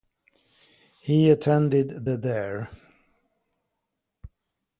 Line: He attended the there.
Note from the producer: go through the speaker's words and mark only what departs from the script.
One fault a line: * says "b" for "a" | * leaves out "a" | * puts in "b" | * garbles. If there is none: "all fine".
all fine